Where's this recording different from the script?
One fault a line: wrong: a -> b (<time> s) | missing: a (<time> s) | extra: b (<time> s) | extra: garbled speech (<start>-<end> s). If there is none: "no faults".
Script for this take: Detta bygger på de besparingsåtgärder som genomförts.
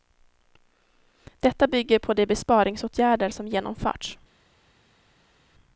no faults